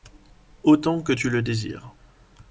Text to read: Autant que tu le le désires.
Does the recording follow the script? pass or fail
fail